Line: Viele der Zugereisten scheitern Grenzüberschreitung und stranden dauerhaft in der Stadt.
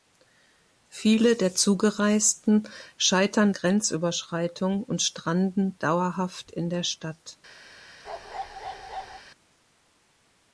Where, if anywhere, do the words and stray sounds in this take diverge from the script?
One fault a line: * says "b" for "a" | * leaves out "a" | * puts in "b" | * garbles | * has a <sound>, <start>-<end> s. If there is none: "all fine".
* has a bark, 8.0-9.2 s